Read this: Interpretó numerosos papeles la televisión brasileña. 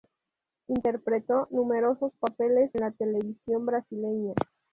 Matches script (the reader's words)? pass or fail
pass